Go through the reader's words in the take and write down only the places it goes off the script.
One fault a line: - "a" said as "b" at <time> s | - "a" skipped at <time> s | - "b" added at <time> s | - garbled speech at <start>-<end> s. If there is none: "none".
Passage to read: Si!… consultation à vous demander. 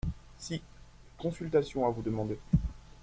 none